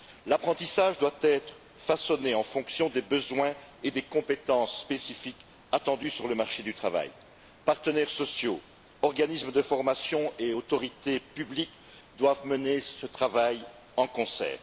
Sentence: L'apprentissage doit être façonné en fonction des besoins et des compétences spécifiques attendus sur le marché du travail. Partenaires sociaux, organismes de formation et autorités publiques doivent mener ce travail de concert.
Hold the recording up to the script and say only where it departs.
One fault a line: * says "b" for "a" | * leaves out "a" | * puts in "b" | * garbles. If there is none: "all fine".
all fine